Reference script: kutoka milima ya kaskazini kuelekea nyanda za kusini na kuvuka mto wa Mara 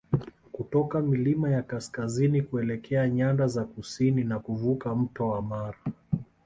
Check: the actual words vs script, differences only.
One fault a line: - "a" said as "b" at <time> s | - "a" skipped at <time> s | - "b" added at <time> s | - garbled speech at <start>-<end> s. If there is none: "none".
none